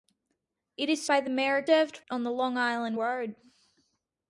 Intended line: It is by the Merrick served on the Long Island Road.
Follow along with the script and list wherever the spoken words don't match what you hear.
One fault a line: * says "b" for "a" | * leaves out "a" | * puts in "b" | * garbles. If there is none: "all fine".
all fine